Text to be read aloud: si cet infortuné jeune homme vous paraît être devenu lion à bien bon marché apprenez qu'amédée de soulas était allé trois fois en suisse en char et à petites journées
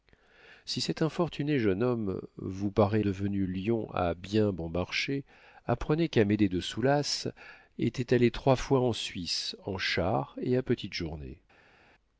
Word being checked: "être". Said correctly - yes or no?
no